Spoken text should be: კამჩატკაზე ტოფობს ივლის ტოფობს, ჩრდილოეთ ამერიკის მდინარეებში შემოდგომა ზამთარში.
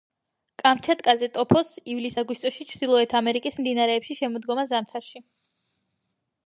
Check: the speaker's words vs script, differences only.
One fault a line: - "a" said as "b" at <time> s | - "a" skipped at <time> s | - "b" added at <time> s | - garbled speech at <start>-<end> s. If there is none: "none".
- "ტოფობს" said as "აგვისტოში" at 2.2 s